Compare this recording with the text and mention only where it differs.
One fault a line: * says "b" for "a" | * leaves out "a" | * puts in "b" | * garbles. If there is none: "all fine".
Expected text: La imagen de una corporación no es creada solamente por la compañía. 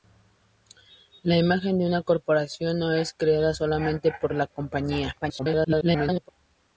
* garbles